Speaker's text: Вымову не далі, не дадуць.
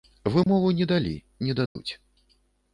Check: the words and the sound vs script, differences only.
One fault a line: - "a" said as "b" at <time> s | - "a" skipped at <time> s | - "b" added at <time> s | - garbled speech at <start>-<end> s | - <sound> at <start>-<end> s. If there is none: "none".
- dropout at 0.4-0.5 s
- dropout at 1.7-1.8 s